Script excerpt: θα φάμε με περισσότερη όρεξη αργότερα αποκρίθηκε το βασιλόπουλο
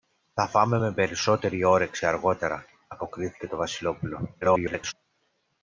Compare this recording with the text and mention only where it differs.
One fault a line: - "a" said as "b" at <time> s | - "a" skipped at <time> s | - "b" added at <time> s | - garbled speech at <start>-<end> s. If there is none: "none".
- garbled speech at 4.4-4.9 s